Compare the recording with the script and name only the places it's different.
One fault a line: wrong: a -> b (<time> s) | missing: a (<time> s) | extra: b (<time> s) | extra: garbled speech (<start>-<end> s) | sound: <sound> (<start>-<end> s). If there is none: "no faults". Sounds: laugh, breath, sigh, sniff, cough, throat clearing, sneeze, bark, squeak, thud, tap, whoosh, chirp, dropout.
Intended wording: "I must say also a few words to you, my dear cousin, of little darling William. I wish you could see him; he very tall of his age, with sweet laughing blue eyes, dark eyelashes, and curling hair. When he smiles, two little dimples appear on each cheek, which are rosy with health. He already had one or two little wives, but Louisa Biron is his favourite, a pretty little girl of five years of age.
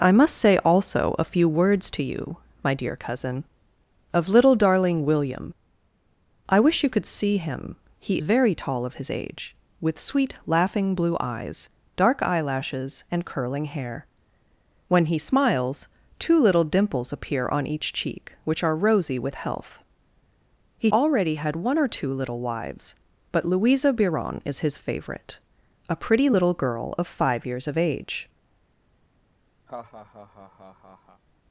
sound: laugh (29.7-31.2 s)